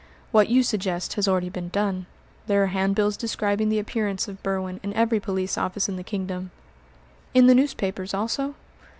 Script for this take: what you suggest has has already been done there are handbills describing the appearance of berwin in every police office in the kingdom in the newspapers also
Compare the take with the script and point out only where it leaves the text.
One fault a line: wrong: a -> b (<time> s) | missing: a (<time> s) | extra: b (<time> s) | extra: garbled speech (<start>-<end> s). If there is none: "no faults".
missing: has (1.3 s)